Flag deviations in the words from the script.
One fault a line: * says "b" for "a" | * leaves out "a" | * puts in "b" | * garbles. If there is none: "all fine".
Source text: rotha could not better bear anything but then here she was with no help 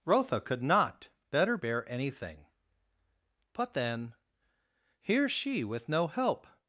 * leaves out "was"